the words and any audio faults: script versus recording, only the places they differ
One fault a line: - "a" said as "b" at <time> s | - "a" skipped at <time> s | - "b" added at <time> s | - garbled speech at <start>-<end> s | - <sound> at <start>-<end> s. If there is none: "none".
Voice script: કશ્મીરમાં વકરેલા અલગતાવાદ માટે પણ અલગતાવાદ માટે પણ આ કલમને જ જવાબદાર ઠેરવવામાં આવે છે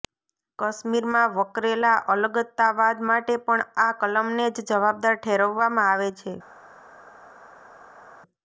- "અલગતાવાદ માટે પણ" skipped at 3.6 s